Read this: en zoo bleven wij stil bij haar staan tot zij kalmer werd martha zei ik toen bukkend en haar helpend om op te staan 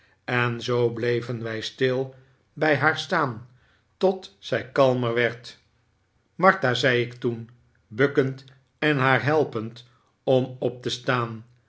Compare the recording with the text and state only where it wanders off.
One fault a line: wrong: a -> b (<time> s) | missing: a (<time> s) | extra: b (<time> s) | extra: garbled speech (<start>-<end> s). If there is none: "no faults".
no faults